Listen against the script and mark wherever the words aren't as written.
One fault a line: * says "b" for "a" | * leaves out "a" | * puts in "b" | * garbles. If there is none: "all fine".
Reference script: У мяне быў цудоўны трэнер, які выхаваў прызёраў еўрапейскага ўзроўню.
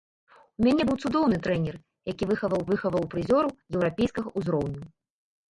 * puts in "выхаваў"